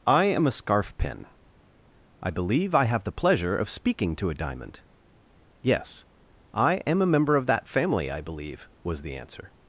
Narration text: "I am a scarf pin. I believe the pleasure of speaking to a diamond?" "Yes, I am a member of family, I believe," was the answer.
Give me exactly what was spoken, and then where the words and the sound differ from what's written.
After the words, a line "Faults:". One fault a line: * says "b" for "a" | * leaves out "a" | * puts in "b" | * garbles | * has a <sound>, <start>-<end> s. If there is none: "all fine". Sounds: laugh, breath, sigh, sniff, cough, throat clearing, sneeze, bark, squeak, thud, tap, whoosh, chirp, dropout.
"I am a scarf pin. I believe I have the pleasure of speaking to a diamond?" "Yes, I am a member of that family, I believe," was the answer.
Faults:
* puts in "I have"
* puts in "that"